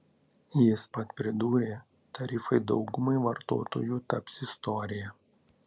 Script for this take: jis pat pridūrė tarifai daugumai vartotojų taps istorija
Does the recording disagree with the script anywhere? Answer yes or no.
no